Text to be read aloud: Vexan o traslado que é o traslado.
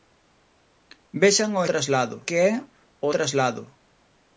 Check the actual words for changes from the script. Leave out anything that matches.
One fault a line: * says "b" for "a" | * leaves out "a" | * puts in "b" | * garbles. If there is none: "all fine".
all fine